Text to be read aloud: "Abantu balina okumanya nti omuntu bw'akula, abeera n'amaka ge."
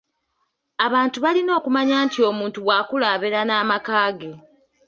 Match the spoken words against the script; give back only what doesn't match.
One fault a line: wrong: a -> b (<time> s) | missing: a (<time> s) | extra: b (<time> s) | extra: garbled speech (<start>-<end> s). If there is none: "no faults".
no faults